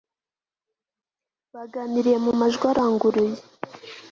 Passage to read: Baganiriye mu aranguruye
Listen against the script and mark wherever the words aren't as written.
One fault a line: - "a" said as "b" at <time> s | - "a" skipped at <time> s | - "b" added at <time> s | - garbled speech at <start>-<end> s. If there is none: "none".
- "majwi" added at 2.4 s